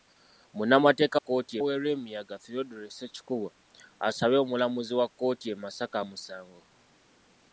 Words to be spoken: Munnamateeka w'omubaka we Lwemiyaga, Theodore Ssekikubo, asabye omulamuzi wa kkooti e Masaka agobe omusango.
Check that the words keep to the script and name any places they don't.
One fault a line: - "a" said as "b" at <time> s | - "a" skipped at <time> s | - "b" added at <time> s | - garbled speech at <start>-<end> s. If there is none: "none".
- "w'omubaka" said as "kkooti" at 1.2 s
- "agobe" skipped at 6.0 s